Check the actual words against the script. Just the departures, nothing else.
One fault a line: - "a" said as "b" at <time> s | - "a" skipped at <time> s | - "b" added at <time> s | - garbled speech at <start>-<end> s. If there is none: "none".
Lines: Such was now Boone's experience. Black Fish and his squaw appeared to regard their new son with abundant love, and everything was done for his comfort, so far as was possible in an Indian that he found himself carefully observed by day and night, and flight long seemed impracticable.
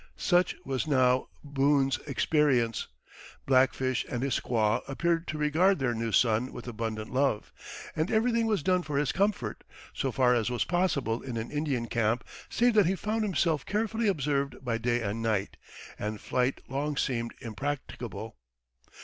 - "camp save" added at 11.8 s